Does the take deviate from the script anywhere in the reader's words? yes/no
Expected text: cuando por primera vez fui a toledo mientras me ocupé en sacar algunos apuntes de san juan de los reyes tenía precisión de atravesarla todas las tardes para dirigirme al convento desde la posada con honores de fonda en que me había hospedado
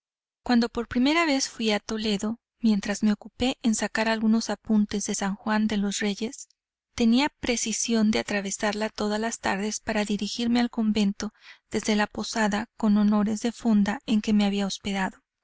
no